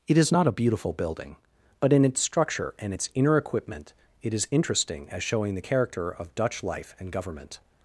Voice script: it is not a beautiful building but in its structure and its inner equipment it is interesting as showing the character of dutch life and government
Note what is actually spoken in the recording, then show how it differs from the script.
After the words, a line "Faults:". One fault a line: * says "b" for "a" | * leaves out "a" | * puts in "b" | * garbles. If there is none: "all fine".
it is not a beautiful building but in its structure and its inner equipment it is interesting as showing the character of dutch life and government
Faults:
all fine